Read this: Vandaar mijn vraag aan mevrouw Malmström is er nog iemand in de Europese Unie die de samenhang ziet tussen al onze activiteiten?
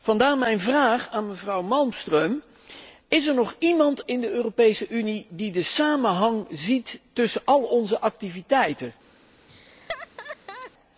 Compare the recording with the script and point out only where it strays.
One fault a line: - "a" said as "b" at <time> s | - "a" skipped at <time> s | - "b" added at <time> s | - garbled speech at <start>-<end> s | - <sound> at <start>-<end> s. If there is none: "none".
- laugh at 9.5-10.7 s